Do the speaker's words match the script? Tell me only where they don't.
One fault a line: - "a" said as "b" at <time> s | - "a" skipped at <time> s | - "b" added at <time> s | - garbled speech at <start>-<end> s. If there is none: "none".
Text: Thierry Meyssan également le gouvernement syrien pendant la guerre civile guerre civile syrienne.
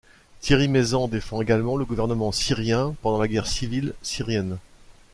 - "défend" added at 1.1 s
- "guerre civile" skipped at 3.9 s